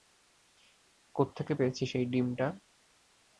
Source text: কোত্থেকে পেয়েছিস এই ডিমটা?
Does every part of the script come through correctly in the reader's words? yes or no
yes